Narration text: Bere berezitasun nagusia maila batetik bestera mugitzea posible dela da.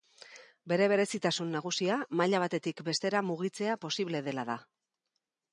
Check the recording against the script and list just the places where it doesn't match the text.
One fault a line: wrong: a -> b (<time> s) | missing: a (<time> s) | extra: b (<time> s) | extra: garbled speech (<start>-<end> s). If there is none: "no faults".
no faults